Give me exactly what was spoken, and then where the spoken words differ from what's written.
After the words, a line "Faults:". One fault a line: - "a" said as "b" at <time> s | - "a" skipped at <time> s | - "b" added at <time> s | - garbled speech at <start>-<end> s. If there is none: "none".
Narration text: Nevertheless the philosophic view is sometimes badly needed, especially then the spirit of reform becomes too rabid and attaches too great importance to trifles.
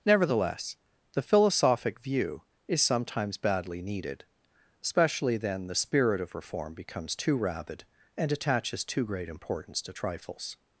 Nevertheless the philosophic view is sometimes badly needed, especially then the spirit of reform becomes too rabid and attaches too great importance to trifles.
Faults:
none